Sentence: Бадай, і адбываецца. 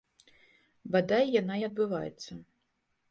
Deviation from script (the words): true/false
true